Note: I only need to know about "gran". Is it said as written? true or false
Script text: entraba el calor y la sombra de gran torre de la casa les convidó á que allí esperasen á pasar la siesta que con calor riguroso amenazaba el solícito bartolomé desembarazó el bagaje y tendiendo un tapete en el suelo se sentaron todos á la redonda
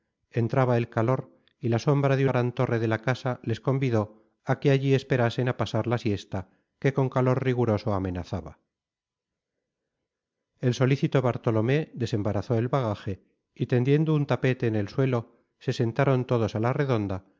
true